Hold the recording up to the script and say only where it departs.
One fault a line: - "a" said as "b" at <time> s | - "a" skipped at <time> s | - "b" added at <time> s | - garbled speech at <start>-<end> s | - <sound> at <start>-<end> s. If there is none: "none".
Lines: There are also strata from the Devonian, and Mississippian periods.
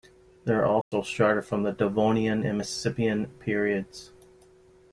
- dropout at 0.8-0.9 s